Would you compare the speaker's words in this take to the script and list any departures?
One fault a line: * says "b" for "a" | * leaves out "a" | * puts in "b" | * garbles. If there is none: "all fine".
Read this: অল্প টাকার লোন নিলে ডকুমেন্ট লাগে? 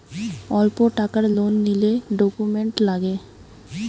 all fine